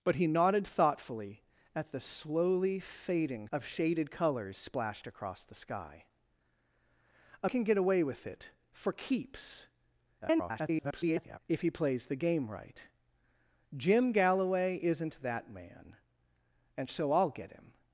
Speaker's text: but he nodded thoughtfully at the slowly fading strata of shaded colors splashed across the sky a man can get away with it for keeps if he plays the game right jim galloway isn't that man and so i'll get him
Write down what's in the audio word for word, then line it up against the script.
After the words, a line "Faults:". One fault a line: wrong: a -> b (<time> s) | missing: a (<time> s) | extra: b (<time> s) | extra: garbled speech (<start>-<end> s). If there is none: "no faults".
but he nodded thoughtfully at the slowly fading of shaded colors splashed across the sky a can get away with it for keeps [garbled] if he plays the game right jim galloway isn't that man and so i'll get him
Faults:
missing: strata (3.5 s)
missing: man (7.5 s)
extra: garbled speech (10.2-11.4 s)